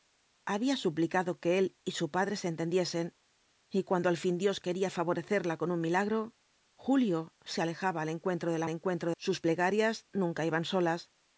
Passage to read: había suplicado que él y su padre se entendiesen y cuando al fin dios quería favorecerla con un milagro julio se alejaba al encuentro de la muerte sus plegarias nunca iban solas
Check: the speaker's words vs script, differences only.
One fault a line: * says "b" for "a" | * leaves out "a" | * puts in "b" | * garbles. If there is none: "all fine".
* says "encuentro" for "muerte"